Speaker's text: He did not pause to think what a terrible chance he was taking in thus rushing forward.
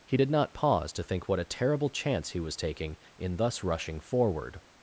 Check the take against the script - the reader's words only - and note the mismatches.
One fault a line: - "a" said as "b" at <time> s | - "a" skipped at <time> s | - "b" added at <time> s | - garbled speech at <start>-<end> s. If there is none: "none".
none